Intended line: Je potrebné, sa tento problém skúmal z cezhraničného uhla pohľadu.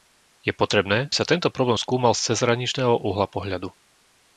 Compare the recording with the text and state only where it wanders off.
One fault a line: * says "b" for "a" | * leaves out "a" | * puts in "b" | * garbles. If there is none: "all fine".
all fine